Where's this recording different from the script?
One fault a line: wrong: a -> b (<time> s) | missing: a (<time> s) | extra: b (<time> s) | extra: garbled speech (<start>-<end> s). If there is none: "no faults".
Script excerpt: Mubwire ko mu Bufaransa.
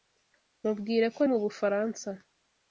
no faults